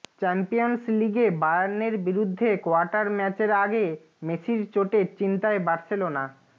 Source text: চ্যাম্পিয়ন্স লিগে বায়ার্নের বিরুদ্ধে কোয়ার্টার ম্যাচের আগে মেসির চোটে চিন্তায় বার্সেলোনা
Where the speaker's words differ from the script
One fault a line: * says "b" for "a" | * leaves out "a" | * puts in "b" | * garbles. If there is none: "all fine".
all fine